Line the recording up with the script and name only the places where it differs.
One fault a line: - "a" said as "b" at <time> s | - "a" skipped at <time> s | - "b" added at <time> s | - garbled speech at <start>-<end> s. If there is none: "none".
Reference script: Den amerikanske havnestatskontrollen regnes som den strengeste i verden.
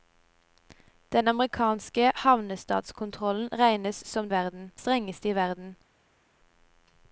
- "den" said as "verden" at 4.3 s